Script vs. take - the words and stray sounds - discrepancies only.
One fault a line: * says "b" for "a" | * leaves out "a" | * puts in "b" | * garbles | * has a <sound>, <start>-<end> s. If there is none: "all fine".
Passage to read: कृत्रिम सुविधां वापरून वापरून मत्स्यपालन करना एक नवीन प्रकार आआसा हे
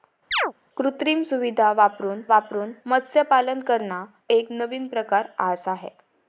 * has a chirp, 0.3-0.5 s